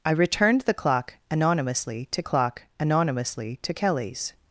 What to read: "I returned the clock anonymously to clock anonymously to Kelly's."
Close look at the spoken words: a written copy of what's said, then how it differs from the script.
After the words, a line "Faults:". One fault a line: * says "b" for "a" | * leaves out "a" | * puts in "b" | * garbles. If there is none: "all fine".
"I returned the clock anonymously to clock anonymously to Kelly's."
Faults:
all fine